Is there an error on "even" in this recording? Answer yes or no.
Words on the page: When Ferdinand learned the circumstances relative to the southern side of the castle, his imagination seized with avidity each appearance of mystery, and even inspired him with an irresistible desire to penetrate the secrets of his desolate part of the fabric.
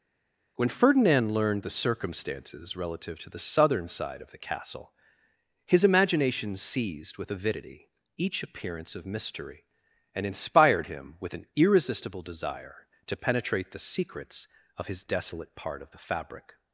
yes